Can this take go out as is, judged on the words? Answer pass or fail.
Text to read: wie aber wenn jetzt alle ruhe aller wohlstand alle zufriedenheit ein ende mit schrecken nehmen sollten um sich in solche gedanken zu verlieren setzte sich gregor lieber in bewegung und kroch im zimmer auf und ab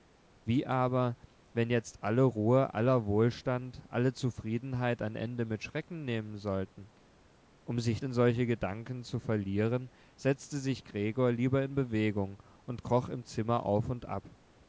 pass